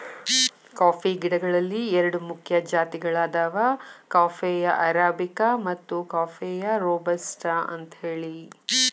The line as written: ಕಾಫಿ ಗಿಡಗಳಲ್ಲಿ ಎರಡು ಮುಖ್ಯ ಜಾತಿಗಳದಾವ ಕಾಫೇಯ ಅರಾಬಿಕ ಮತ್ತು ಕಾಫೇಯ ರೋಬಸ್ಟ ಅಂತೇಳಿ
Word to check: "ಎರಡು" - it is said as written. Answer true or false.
true